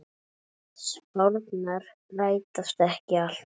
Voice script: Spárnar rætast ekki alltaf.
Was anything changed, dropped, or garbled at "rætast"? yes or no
no